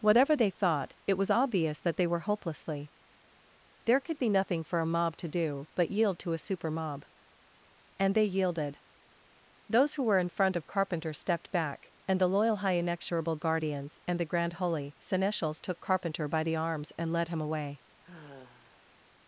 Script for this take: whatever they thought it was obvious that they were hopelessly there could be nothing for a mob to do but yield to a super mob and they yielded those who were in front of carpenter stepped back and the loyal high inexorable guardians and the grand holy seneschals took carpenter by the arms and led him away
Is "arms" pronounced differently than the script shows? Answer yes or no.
no